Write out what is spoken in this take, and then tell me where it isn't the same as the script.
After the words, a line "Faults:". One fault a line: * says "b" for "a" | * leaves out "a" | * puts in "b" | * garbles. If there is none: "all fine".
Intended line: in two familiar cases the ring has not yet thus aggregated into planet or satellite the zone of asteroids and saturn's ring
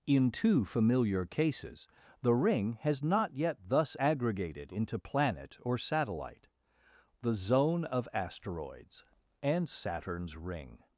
in two familiar cases the ring has not yet thus aggregated into planet or satellite the zone of asteroids and saturn's ring
Faults:
all fine